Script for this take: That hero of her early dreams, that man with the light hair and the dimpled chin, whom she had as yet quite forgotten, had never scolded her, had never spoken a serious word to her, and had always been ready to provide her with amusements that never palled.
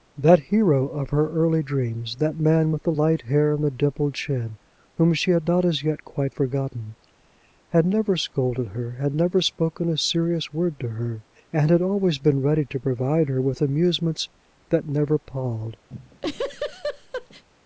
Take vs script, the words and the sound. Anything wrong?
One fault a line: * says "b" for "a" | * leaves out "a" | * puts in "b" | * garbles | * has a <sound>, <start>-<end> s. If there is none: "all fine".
* puts in "not"
* has a laugh, 15.9-17.4 s